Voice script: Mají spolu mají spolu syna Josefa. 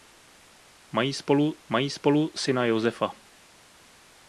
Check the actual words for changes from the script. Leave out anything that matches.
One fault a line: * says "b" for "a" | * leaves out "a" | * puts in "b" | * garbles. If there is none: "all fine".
all fine